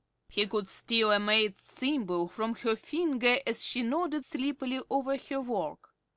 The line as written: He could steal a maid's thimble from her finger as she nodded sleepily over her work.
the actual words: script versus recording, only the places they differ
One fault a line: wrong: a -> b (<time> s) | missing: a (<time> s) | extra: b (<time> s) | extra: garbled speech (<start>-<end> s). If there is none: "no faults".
no faults